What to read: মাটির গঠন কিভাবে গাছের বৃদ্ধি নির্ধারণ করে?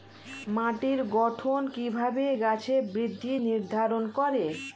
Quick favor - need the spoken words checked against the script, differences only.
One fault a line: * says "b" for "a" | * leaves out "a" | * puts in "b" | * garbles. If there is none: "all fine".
all fine